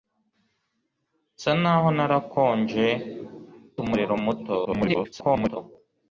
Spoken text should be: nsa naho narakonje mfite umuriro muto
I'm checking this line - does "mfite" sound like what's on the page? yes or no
no